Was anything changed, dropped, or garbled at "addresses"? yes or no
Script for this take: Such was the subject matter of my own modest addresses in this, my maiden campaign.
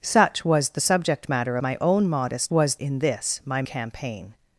yes